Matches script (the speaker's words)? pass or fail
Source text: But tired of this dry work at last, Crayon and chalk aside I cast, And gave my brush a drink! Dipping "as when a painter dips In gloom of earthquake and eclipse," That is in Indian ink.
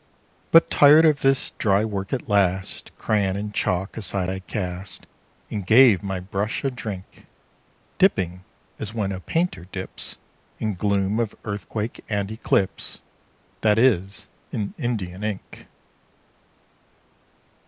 pass